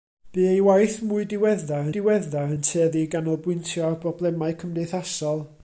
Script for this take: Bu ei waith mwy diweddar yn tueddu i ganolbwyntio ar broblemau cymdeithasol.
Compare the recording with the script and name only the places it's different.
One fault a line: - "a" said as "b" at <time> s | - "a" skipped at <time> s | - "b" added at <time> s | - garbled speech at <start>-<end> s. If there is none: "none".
- "diweddar" added at 2.0 s